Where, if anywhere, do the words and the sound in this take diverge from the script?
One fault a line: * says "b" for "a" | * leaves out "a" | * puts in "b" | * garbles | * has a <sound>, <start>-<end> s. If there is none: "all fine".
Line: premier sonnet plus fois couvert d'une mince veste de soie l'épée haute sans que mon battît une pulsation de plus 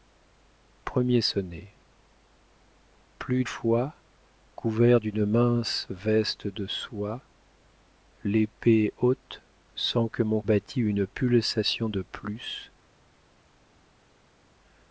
all fine